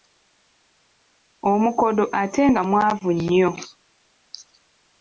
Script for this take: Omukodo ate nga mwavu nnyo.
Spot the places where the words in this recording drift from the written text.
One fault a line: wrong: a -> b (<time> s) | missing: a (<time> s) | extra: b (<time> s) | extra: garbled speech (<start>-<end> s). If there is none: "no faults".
no faults